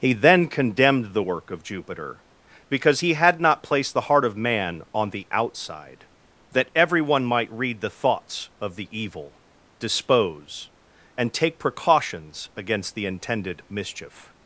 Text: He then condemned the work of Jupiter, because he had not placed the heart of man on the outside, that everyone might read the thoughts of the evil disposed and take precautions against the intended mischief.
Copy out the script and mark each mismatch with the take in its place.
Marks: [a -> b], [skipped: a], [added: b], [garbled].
He then condemned the work of Jupiter, because he had not placed the heart of man on the outside, that everyone might read the thoughts of the evil [disposed -> dispose] and take precautions against the intended mischief.